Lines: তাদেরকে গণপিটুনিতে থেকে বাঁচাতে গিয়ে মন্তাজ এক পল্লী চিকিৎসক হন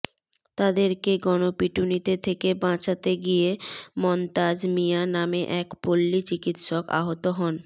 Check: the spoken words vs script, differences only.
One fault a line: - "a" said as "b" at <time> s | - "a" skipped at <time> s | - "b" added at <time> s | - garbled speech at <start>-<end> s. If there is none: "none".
- "মিয়া নামে" added at 4.8 s
- "আহত" added at 7.0 s